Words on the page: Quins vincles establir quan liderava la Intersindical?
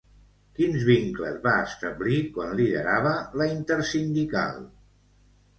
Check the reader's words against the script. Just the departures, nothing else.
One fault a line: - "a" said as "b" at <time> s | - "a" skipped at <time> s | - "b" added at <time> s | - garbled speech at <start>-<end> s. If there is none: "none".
- "va" added at 1.4 s